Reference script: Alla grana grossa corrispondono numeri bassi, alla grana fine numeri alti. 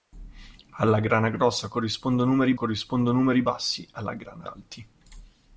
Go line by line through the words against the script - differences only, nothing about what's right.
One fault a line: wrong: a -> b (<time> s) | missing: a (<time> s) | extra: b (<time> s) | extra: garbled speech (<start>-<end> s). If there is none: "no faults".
extra: corrispondono numeri (2.5 s)
missing: fine numeri (4.5 s)